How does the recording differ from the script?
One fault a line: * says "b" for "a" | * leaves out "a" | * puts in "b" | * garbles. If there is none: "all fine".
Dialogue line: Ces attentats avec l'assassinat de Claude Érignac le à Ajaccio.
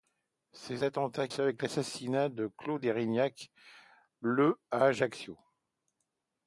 all fine